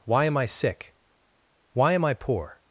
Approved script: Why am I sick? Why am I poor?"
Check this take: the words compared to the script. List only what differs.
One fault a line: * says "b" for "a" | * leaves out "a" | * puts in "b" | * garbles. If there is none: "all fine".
all fine